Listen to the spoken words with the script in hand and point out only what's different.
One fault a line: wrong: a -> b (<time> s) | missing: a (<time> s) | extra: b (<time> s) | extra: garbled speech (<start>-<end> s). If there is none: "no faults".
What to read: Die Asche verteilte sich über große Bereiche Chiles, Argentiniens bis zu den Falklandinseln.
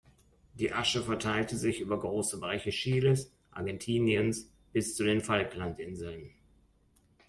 no faults